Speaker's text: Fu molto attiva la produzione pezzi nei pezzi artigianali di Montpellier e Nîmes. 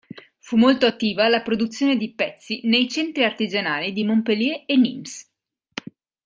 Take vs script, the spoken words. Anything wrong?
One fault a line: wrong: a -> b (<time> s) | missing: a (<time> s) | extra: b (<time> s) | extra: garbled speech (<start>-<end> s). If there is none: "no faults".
extra: di (2.0 s)
wrong: pezzi -> centri (2.9 s)